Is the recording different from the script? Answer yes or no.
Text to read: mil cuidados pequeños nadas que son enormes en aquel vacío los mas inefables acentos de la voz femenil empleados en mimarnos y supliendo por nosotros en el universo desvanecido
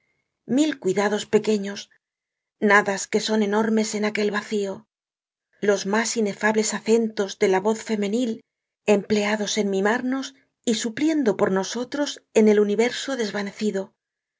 no